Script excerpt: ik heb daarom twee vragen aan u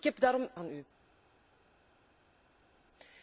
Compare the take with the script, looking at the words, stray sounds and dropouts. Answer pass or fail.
fail